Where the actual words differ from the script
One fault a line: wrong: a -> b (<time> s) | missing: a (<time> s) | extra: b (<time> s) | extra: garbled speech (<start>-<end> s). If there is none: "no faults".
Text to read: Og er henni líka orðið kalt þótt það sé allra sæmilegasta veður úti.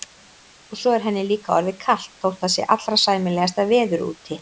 extra: svo (0.8 s)